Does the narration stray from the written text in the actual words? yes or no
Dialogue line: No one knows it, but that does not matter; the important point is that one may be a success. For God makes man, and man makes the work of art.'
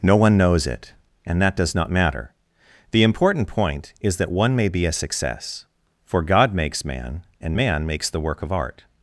yes